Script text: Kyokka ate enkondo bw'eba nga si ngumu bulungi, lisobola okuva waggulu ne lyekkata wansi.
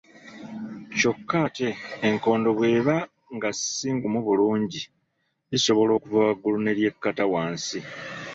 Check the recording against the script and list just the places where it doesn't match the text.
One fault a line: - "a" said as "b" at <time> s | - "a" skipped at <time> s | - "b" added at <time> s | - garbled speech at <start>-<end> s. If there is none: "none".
none